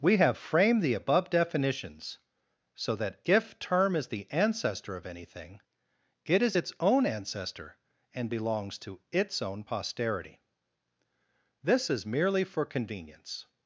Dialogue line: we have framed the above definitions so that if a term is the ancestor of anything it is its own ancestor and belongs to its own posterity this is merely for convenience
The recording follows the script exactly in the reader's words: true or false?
false